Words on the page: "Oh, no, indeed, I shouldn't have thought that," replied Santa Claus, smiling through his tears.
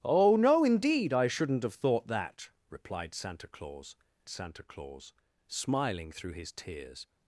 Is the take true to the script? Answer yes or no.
no